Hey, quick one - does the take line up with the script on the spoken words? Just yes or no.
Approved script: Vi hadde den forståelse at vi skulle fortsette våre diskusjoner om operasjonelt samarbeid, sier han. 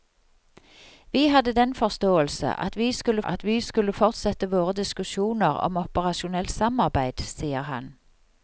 no